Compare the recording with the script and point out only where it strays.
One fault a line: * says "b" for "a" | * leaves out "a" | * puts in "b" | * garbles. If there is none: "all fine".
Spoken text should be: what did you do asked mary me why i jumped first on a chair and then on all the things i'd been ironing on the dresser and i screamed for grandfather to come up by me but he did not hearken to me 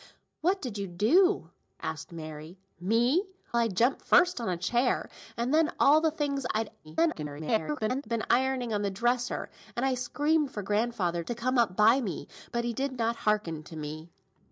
* leaves out "why"
* garbles